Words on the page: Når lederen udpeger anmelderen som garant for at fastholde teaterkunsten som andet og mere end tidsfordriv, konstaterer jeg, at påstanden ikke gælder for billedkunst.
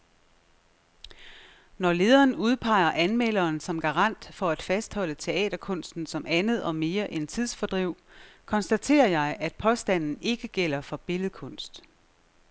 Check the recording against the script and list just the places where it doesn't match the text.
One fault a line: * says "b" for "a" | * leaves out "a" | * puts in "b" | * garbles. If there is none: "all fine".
all fine